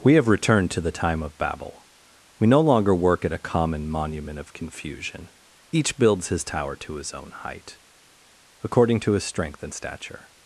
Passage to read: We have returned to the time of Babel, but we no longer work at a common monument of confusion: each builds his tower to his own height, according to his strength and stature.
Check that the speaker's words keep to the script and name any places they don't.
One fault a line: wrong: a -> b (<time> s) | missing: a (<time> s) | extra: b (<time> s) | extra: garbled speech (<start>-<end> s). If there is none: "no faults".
missing: but (1.9 s)